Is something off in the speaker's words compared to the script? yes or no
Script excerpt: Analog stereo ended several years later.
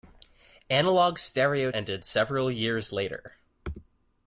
no